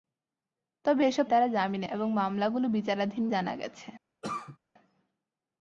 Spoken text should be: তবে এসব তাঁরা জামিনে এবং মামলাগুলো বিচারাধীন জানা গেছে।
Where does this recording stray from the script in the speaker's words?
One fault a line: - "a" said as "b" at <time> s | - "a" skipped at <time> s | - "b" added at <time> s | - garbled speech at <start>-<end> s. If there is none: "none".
none